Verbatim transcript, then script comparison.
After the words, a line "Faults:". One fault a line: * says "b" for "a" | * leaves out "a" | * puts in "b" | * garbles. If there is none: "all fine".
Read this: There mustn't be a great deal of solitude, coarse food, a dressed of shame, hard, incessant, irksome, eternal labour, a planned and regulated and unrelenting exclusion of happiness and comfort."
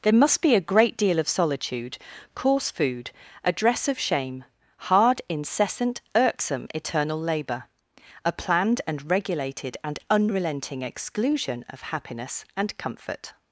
There must be a great deal of solitude, coarse food, a dress of shame, hard, incessant, irksome, eternal labour, a planned and regulated and unrelenting exclusion of happiness and comfort."
Faults:
* says "must" for "mustn't"
* says "dress" for "dressed"